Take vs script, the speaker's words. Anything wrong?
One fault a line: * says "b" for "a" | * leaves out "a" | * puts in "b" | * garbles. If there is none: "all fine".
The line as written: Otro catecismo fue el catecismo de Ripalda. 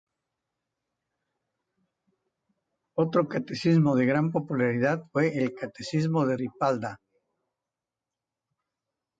* puts in "de gran popularidad"